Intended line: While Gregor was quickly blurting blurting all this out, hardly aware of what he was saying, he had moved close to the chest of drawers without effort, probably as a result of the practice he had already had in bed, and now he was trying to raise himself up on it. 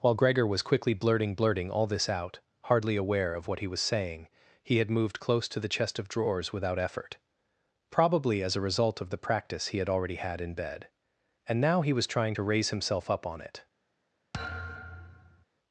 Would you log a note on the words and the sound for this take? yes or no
yes